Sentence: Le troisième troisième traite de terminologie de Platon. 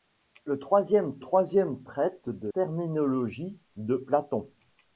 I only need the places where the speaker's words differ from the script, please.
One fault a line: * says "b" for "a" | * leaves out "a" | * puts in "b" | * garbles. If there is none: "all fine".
all fine